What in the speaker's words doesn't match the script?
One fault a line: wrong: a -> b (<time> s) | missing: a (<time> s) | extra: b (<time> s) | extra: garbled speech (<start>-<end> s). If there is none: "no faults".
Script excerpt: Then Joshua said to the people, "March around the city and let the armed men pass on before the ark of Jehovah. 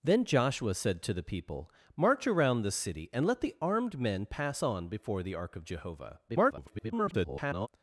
extra: garbled speech (6.3-7.7 s)